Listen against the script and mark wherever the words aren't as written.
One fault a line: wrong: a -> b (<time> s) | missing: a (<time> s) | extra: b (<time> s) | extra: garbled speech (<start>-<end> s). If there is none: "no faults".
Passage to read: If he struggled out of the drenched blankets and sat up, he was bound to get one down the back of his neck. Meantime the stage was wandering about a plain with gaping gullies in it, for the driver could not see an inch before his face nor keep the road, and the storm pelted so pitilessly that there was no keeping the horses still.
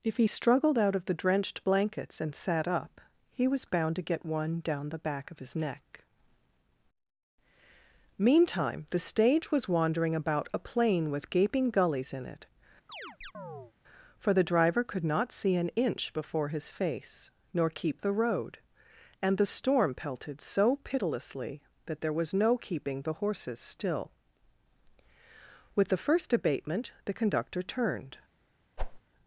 extra: With the first abatement the conductor turned (25.8 s)